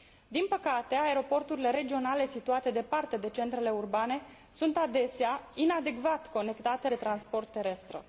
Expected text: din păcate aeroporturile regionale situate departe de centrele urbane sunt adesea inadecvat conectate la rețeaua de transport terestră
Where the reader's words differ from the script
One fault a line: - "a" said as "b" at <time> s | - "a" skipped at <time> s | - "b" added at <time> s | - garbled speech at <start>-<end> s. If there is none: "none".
- "la rețeaua" skipped at 6.9 s